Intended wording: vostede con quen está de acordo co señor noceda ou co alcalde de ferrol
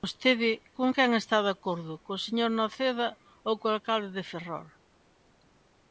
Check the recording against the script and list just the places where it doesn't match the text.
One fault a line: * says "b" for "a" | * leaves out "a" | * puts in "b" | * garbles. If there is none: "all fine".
all fine